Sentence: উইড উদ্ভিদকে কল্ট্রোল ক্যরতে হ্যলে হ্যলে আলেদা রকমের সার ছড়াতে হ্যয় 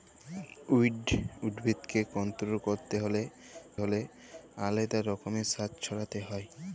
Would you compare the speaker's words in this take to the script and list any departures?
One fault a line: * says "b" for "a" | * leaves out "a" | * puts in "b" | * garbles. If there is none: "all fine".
all fine